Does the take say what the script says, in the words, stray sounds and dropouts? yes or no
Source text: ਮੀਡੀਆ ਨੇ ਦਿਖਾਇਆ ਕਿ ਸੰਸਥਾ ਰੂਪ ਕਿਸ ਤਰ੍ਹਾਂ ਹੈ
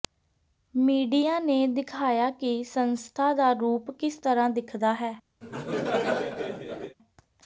no